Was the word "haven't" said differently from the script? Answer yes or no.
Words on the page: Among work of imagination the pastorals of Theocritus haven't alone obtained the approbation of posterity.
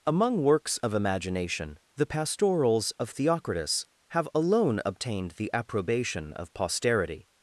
yes